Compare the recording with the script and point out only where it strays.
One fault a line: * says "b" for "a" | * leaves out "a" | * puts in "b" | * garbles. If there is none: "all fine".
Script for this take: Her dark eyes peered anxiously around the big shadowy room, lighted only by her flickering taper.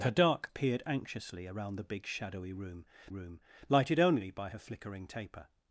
* leaves out "eyes"
* puts in "room"